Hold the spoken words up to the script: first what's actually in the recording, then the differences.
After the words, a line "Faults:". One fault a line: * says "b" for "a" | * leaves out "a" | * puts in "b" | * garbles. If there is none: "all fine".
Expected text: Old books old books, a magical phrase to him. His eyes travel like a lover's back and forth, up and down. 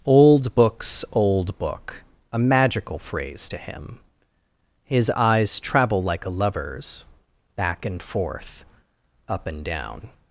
Old books old book, a magical phrase to him. His eyes travel like a lover's back and forth, up and down.
Faults:
* says "book" for "books"